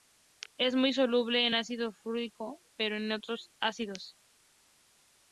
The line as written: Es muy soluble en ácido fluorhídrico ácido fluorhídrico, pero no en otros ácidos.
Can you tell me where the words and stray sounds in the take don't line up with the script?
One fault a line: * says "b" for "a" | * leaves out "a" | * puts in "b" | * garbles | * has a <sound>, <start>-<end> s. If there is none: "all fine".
* leaves out "ácido fluorhídrico"